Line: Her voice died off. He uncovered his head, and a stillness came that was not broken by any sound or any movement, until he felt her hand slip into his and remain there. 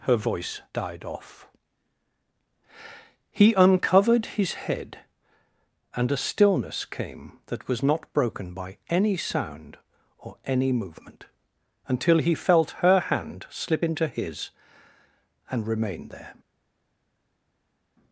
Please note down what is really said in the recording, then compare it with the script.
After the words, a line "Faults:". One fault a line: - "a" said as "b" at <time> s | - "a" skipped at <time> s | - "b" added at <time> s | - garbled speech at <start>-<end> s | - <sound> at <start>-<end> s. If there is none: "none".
Her voice died off. He uncovered his head, and a stillness came that was not broken by any sound or any movement, until he felt her hand slip into his and remain there.
Faults:
none